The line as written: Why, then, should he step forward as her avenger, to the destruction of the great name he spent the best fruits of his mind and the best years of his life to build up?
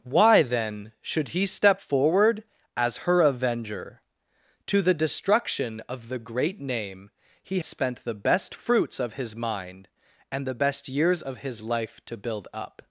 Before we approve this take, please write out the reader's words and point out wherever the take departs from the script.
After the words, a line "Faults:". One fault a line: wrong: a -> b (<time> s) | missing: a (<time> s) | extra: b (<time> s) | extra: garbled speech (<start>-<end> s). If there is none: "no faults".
Why, then, should he step forward as her avenger, to the destruction of the great name he spent the best fruits of his mind and the best years of his life to build up?
Faults:
no faults